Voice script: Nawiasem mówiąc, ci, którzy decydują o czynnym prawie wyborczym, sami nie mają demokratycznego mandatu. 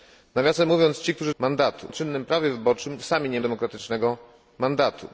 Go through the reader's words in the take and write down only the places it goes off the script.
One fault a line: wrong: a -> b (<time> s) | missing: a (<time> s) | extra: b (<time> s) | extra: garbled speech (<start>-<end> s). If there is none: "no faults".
wrong: decydują -> mandatu (1.4 s)
missing: mają (3.4 s)